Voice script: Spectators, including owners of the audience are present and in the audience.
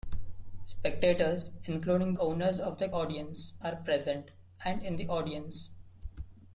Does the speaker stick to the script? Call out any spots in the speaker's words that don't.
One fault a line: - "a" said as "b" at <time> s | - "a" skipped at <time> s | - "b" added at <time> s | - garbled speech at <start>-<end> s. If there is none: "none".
none